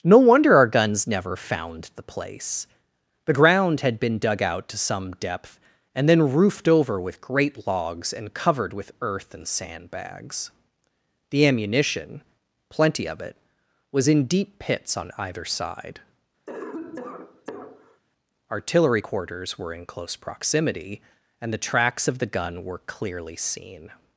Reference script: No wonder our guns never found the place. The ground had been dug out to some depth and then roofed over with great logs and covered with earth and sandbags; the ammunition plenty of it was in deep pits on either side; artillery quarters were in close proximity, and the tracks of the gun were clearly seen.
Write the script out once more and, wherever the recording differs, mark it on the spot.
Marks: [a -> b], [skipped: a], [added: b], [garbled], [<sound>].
No wonder our guns never found the place. The ground had been dug out to some depth and then roofed over with great logs and covered with earth and sandbags; the ammunition plenty of it was in deep pits on either side; [cough] artillery quarters were in close proximity, and the tracks of the gun were clearly seen.